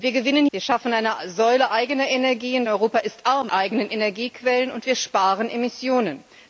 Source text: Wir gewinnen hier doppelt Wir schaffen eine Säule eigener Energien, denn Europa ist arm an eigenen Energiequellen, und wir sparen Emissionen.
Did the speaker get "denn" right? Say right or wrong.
wrong